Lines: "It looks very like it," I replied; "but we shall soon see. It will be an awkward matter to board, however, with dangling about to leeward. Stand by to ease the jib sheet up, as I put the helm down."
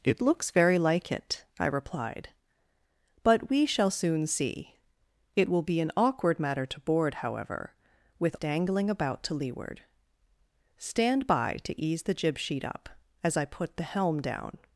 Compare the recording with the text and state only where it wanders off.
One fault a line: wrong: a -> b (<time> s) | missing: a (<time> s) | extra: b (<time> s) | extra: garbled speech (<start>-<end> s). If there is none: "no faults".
no faults